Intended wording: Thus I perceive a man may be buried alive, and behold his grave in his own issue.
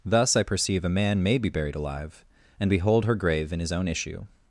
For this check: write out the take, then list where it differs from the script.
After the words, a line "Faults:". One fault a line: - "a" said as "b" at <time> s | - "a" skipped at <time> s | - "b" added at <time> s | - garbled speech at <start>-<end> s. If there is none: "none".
Thus I perceive a man may be buried alive, and behold her grave in his own issue.
Faults:
- "his" said as "her" at 3.0 s